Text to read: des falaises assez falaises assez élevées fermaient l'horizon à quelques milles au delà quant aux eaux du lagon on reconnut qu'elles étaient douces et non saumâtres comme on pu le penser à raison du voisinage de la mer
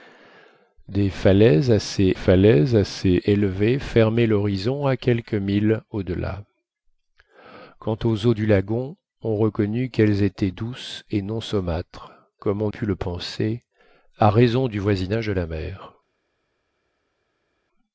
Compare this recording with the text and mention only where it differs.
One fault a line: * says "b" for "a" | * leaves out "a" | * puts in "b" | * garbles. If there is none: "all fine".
all fine